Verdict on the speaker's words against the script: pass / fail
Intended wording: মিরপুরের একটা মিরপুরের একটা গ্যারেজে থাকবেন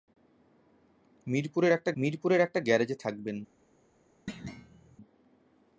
pass